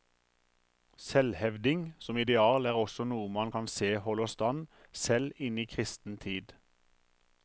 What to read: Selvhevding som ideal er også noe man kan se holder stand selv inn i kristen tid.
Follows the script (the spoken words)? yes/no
yes